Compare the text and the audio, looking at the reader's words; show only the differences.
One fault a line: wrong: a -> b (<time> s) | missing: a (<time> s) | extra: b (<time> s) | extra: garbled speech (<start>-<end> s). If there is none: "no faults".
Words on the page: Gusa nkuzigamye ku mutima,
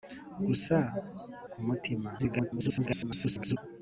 missing: nkuzigamye (0.8 s)
extra: garbled speech (2.2-3.6 s)